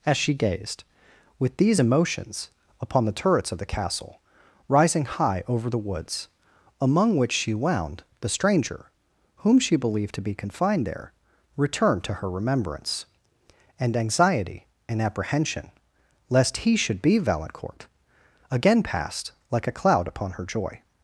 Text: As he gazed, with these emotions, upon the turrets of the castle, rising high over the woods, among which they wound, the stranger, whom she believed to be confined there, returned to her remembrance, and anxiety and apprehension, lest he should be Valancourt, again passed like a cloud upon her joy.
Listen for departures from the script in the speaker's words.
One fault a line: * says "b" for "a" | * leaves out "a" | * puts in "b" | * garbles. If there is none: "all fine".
* says "she" for "he"
* says "she" for "they"